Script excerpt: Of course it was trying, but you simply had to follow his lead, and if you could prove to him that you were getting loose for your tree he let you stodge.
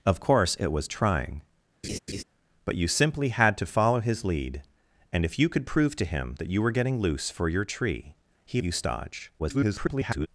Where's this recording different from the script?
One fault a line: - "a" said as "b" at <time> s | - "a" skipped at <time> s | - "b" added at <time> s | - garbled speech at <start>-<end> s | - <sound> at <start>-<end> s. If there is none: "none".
- laugh at 1.8-2.2 s
- "let" skipped at 8.6 s
- garbled speech at 9.4-10.3 s